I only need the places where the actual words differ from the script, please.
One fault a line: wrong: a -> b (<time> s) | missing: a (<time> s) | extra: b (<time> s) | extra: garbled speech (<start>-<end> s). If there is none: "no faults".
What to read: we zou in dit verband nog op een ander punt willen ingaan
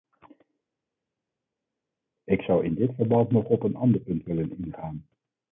wrong: we -> ik (2.2 s)